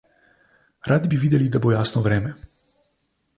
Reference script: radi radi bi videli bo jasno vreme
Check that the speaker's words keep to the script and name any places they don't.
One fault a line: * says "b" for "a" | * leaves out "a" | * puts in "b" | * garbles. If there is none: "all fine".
* leaves out "radi"
* puts in "da"